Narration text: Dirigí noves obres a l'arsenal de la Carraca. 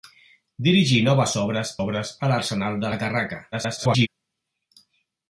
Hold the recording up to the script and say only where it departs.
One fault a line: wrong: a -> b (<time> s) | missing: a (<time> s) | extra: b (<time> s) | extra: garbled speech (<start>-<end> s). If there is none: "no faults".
extra: obres (1.8 s)
extra: garbled speech (3.5-4.1 s)